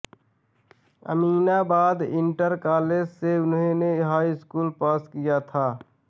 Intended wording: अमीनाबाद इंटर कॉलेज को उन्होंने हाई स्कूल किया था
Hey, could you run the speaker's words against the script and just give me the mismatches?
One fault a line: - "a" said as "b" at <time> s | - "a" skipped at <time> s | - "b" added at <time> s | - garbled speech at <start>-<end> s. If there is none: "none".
- "को" said as "से" at 3.1 s
- "पास" added at 4.8 s